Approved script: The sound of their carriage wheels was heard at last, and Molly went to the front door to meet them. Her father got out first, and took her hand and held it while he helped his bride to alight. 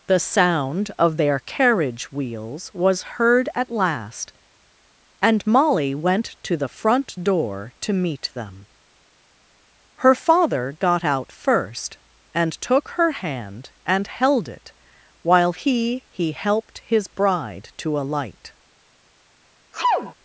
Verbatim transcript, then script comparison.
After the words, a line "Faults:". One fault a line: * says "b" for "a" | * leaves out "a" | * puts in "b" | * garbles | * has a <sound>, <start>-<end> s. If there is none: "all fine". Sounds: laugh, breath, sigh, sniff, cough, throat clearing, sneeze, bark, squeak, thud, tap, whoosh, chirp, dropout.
The sound of their carriage wheels was heard at last, and Molly went to the front door to meet them. Her father got out first, and took her hand and held it while he he helped his bride to alight.
Faults:
* puts in "he"
* has a sneeze, 19.7-20.1 s